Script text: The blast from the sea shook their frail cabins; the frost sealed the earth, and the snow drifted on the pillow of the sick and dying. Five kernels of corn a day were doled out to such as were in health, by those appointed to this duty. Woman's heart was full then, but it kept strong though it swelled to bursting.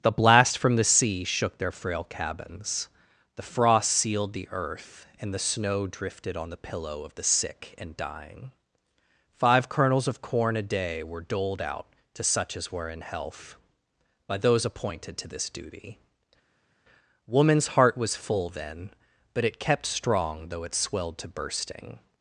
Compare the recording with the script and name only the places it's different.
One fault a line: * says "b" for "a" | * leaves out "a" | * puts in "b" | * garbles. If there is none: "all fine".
all fine